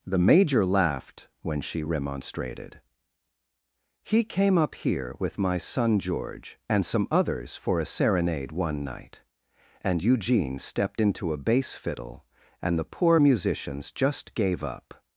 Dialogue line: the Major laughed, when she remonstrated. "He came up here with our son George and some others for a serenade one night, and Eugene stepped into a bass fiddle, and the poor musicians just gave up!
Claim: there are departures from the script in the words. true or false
true